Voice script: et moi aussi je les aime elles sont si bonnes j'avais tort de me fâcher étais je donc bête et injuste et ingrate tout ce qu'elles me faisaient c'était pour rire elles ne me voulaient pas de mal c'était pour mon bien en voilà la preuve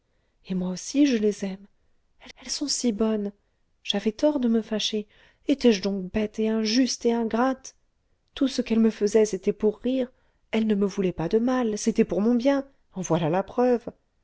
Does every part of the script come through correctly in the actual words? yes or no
no